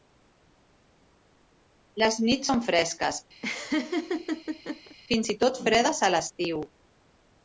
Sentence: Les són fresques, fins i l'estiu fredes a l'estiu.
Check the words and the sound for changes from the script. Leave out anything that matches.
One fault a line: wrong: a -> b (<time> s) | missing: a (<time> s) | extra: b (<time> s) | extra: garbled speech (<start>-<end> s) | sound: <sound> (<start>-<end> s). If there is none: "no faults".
extra: nits (2.3 s)
sound: laugh (3.4-5.0 s)
wrong: l'estiu -> tot (5.5 s)